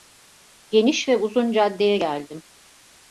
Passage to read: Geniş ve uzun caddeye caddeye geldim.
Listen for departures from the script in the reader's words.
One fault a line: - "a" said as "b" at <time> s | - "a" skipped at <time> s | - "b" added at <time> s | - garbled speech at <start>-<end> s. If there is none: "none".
- "caddeye" skipped at 2.0 s